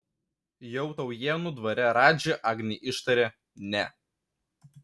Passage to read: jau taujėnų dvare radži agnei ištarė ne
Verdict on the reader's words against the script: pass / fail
pass